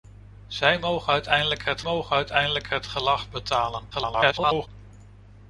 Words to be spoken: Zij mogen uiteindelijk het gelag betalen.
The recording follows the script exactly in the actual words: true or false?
false